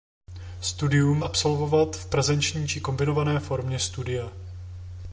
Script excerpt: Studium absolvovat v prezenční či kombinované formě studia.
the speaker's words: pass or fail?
pass